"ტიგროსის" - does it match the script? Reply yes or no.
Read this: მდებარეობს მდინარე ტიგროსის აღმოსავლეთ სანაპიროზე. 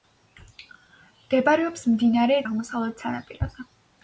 no